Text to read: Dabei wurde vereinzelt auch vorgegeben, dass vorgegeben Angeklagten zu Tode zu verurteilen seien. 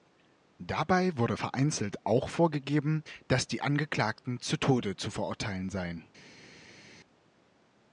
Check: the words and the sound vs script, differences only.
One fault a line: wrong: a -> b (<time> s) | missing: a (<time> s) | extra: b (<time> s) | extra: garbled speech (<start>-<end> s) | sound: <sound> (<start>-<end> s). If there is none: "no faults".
wrong: vorgegeben -> die (3.5 s)